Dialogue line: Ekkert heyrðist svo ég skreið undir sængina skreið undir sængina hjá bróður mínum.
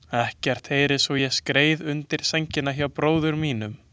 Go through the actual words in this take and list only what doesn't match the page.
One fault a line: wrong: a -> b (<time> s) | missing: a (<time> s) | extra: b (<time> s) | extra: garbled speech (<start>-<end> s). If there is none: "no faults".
missing: skreið undir sængina (2.7 s)